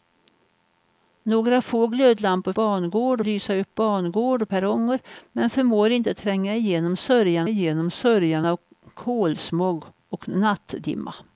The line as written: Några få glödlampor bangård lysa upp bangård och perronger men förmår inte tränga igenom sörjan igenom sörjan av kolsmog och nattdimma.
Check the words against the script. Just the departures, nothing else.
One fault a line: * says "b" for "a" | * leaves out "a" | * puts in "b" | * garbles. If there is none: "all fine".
all fine